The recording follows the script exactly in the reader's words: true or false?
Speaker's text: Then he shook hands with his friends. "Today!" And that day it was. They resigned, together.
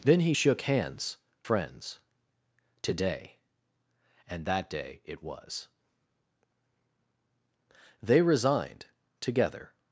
false